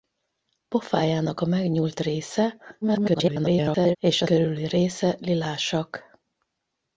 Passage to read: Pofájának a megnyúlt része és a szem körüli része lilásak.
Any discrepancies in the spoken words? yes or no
yes